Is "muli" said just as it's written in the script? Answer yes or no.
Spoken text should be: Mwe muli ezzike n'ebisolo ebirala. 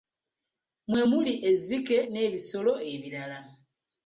yes